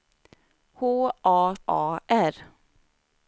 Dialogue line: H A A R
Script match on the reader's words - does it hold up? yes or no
yes